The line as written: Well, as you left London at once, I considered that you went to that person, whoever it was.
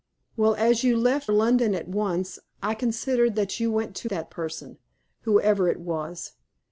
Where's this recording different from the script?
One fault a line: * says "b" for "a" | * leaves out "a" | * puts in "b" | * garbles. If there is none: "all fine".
all fine